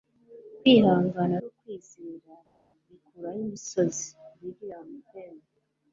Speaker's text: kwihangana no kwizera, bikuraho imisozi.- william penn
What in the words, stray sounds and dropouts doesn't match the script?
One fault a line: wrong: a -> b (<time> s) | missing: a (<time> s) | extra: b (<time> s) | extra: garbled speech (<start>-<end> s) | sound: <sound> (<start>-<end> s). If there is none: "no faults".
no faults